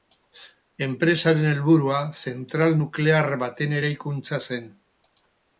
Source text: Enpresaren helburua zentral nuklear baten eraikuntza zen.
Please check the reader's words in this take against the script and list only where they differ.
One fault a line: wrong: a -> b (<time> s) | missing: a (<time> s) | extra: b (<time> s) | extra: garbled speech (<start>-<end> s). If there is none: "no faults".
no faults